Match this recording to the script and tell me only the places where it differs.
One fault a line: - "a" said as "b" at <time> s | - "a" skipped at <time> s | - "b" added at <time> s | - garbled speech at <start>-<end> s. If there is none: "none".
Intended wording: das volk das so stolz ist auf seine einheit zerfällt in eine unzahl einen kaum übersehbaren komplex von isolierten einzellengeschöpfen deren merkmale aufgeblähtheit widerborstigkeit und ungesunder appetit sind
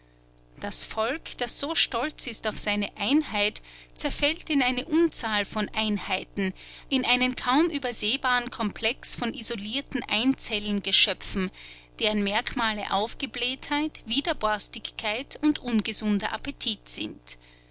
- "von einheiten in" added at 5.5 s